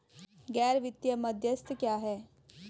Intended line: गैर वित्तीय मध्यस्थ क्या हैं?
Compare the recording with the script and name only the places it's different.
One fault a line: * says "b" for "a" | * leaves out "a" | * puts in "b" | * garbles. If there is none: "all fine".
all fine